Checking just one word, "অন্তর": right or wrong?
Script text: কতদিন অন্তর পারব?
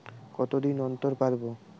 right